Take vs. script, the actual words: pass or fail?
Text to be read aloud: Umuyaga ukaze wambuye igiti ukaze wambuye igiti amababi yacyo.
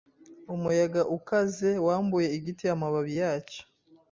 fail